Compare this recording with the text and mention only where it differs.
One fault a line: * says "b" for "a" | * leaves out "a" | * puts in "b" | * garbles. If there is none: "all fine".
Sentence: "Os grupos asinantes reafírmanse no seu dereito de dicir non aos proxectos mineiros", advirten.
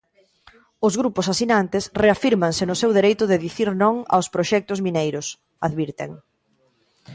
all fine